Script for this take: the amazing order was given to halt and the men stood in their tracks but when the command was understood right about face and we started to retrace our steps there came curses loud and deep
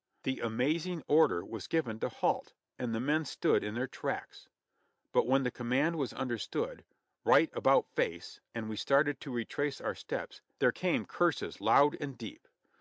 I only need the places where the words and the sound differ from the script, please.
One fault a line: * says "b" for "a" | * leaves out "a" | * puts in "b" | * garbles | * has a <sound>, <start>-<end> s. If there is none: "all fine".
all fine